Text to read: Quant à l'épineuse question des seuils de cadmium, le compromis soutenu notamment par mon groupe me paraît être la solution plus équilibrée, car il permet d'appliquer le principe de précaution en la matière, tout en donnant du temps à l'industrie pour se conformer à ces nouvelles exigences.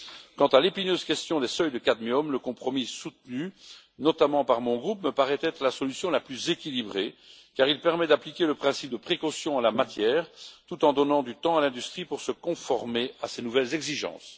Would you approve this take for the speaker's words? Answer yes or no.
no